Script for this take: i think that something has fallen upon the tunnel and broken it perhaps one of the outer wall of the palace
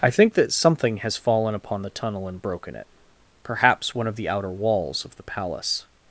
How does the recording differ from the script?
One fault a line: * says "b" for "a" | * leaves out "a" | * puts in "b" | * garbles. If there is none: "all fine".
* says "walls" for "wall"